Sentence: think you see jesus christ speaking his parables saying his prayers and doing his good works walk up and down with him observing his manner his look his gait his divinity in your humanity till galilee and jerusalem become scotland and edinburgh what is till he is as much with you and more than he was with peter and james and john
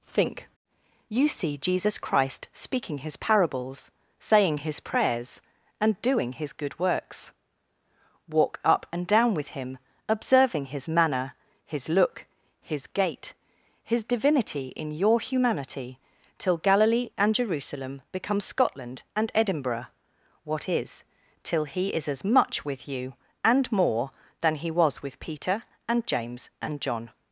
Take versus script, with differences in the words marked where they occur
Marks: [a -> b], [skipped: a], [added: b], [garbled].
think you see jesus christ speaking his parables saying his prayers and doing his good works walk up and down with him observing his manner his look his gait his divinity in your humanity till galilee and jerusalem become scotland and edinburgh what is till he is as much with you and more than he was with peter and james and john